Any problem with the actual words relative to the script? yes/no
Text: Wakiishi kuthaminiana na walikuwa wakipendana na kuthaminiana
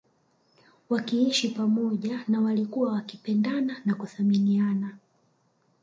yes